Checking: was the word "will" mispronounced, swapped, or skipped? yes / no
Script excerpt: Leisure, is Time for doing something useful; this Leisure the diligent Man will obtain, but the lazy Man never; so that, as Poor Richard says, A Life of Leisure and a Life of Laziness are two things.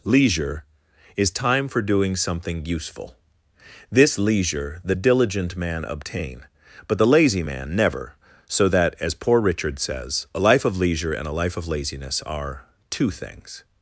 yes